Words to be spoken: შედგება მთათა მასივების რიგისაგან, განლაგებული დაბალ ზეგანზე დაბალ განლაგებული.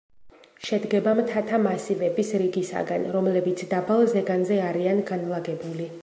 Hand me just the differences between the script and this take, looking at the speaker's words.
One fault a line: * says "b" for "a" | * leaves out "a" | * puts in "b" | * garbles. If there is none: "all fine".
* says "რომლებიც" for "განლაგებული"
* says "არიან" for "დაბალ"